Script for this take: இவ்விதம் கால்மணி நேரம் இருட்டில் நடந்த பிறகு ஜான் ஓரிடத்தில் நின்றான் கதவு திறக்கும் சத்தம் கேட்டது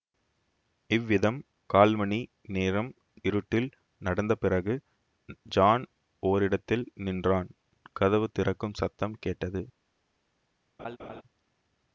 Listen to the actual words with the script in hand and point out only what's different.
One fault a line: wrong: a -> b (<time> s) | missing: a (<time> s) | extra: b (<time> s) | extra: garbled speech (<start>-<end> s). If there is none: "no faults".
no faults